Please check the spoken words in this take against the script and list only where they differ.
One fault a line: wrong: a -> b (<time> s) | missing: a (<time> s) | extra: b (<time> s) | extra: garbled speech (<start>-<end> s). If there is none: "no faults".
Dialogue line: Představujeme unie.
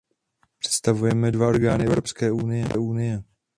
extra: dva orgány Evropské (1.3 s)